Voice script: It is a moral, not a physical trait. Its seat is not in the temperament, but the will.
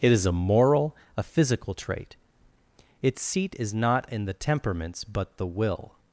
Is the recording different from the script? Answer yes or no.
yes